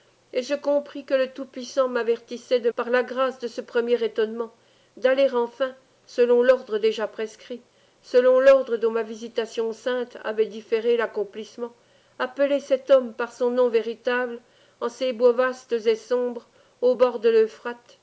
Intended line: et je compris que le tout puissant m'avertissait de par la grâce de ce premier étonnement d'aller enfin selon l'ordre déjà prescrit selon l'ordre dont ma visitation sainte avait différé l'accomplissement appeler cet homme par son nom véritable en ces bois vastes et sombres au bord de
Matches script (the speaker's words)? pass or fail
pass